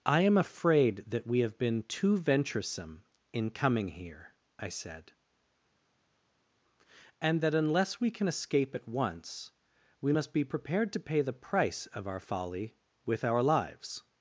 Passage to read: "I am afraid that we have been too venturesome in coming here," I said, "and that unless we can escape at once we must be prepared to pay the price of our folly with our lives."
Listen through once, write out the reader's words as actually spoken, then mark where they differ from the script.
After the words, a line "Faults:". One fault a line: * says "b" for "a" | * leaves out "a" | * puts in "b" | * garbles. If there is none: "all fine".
"I am afraid that we have been too venturesome in coming here," I said, "and that unless we can escape at once we must be prepared to pay the price of our folly with our lives."
Faults:
all fine